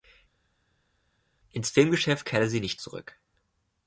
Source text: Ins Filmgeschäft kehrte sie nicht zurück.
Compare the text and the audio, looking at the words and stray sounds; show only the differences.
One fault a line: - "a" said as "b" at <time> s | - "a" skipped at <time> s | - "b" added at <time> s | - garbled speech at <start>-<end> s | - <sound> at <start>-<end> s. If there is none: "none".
none